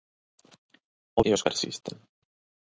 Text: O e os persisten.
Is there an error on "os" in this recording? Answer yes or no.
no